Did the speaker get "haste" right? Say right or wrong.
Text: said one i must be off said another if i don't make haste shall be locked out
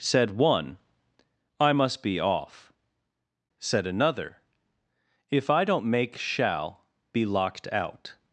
wrong